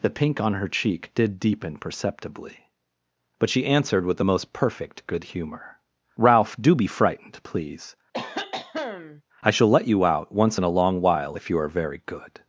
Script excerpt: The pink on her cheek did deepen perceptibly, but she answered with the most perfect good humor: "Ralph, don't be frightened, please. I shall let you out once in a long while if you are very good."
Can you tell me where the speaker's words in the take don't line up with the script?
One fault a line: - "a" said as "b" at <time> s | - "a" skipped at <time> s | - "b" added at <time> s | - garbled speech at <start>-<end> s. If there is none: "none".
- "don't" said as "do" at 6.6 s